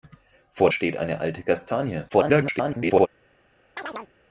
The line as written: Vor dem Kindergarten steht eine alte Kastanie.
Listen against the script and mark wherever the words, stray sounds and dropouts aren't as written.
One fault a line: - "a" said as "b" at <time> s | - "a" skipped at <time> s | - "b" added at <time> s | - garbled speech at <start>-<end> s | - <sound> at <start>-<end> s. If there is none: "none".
- "dem Kindergarten" skipped at 0.7 s
- garbled speech at 2.1-3.1 s
- chirp at 3.8-4.1 s